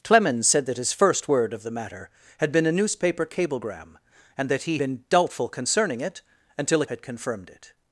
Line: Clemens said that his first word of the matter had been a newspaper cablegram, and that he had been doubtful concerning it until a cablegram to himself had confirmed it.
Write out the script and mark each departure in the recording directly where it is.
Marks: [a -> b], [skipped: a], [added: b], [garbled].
Clemens said that his first word of the matter had been a newspaper cablegram, and that he [skipped: had] been doubtful concerning it until a [skipped: cablegram to himself] had confirmed it.